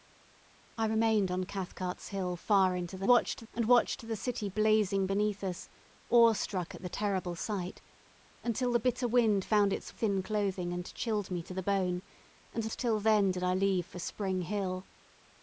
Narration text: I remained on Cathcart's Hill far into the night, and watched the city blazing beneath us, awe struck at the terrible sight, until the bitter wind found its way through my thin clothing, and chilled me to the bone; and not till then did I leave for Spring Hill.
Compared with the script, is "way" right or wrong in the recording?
wrong